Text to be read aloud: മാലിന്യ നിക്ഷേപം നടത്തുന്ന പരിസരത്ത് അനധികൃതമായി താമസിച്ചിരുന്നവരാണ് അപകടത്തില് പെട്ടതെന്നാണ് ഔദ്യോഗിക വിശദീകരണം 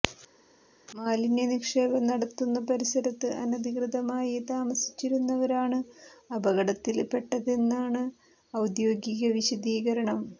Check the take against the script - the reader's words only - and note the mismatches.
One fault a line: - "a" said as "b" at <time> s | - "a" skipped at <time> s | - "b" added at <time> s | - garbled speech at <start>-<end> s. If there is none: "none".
none